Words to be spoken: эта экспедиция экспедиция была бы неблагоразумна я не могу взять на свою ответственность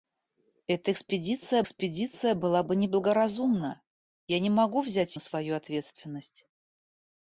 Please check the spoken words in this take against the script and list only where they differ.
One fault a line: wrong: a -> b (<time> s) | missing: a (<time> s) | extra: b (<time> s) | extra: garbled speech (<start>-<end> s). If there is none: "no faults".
no faults